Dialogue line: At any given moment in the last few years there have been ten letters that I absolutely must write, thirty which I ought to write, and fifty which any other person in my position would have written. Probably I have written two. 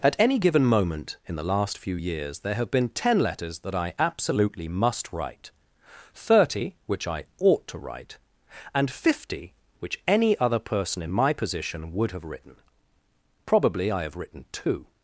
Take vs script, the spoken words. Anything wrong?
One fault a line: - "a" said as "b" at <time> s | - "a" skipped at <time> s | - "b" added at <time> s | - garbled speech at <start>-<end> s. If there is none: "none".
none